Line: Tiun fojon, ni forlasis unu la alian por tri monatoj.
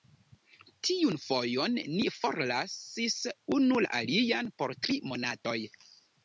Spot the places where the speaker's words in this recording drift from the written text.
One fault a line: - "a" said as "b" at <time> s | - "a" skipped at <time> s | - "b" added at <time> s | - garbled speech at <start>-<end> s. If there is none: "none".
none